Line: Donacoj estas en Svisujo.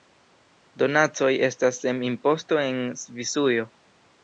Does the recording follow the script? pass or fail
fail